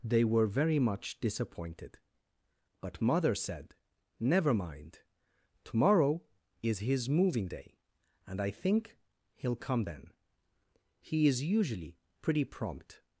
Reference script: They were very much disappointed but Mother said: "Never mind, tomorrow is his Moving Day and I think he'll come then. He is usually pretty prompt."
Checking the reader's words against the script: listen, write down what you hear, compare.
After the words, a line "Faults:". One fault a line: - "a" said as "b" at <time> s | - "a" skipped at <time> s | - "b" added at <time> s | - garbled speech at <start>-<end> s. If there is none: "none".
They were very much disappointed but Mother said: "Never mind, tomorrow is his Moving Day and I think he'll come then. He is usually pretty prompt."
Faults:
none